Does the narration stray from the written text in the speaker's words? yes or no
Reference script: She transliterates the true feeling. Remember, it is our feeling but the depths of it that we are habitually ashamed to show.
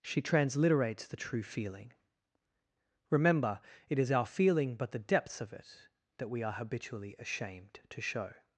no